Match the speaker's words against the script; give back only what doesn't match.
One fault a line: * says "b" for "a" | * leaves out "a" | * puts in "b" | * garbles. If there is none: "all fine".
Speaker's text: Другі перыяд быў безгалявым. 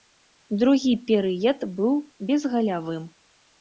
all fine